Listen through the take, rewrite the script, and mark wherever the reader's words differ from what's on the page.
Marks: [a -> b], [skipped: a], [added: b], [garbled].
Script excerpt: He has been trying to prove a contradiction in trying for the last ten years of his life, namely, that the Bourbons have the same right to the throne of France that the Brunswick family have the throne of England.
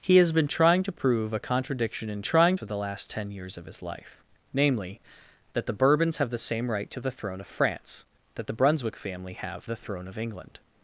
He has been trying to prove a contradiction in trying for the last ten years of his life, namely, that the Bourbons have the same right to the throne of France that the Brunswick family have the throne of England.